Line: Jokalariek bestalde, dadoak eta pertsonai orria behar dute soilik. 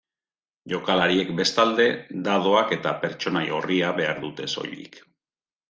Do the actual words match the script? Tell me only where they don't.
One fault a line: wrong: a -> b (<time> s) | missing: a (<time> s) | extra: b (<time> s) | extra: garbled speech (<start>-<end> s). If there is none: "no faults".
no faults